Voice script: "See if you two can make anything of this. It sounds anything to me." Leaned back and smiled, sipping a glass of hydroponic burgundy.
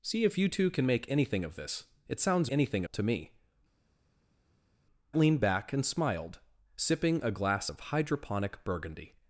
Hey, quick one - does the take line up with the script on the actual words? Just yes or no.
yes